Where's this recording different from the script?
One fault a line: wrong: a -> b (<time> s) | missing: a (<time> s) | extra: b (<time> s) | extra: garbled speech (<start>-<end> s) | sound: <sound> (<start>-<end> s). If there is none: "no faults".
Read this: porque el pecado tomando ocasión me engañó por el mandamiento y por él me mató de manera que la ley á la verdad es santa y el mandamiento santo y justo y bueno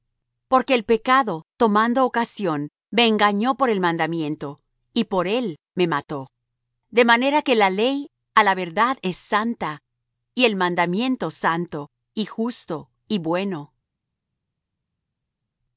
no faults